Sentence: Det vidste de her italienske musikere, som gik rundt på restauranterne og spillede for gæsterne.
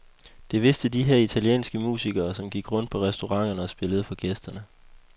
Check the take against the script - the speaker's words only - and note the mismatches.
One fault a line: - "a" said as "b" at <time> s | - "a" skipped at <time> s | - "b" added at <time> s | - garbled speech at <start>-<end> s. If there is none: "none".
none